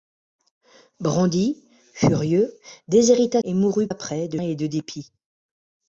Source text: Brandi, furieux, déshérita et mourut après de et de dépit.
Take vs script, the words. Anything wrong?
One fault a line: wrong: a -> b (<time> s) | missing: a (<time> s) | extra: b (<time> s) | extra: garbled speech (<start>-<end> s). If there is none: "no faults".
no faults